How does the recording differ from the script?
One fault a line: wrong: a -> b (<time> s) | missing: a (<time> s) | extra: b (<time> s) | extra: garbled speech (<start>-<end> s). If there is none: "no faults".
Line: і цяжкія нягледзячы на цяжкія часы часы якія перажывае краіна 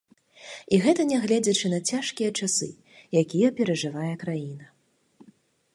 wrong: цяжкія -> гэта (0.8 s)
missing: часы (2.7 s)